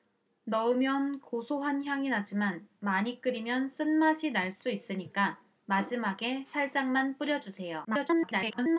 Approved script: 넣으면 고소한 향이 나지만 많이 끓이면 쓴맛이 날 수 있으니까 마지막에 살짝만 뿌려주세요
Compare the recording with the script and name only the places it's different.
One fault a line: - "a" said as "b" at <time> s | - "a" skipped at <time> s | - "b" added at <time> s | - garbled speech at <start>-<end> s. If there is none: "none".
- garbled speech at 7.8-8.8 s